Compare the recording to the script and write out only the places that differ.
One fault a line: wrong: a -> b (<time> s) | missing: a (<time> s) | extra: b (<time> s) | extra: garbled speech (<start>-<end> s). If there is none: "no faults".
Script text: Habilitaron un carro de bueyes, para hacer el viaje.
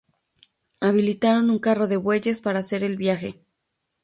no faults